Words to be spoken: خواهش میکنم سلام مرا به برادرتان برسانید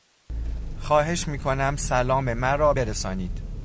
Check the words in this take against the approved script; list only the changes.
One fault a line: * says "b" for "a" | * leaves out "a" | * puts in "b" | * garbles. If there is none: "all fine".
* leaves out "به برادرتان"